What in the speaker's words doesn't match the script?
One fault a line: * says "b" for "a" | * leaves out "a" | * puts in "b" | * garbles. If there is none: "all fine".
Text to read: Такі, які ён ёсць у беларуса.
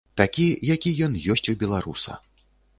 all fine